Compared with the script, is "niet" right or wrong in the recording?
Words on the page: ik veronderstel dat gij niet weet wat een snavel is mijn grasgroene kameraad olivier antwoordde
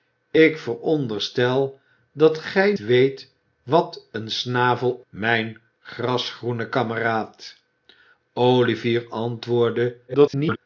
wrong